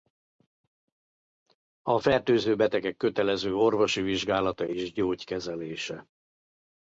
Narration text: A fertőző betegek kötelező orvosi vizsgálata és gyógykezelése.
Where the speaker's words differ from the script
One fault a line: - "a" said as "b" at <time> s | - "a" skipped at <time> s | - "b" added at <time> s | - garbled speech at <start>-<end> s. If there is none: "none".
none